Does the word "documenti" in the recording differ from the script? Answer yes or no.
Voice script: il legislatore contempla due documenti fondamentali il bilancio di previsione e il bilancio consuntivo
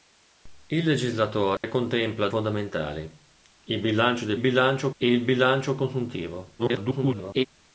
yes